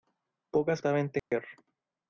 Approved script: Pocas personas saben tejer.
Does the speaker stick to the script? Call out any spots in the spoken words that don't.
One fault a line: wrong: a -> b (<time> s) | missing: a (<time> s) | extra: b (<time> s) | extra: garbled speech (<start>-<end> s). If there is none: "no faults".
missing: personas (0.8 s)